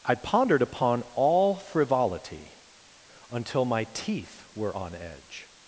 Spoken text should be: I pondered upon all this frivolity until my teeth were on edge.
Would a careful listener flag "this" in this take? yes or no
yes